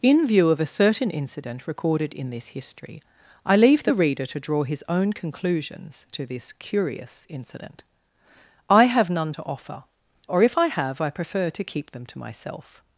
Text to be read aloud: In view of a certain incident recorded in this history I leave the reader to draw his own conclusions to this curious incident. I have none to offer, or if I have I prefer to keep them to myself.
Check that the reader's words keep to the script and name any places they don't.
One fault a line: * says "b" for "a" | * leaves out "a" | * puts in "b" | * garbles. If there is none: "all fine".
all fine